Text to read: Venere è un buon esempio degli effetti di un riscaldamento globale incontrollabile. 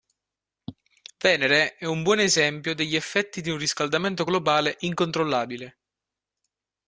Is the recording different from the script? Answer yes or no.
no